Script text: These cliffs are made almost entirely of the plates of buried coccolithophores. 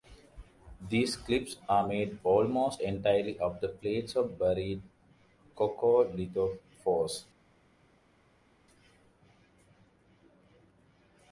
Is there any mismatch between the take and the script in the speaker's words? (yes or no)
no